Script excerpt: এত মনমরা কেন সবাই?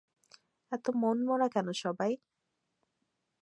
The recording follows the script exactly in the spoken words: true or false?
true